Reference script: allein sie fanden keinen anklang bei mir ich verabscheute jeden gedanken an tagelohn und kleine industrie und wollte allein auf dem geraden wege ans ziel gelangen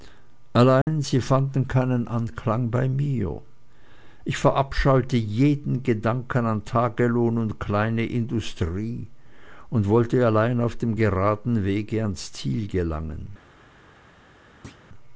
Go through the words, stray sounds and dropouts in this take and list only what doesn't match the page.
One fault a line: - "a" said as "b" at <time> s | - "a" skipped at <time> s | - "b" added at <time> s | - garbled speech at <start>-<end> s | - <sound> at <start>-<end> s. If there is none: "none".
- dropout at 0.8-0.9 s
- thud at 14.6-14.9 s